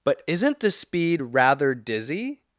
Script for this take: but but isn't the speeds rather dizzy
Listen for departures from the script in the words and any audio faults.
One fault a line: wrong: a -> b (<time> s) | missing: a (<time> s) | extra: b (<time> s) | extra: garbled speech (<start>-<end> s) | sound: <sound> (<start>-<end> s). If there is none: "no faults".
missing: but (0.2 s)
wrong: speeds -> speed (0.7 s)